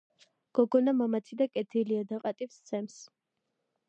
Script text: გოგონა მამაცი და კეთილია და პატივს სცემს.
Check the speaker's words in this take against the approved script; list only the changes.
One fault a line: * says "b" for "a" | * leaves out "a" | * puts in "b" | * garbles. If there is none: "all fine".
all fine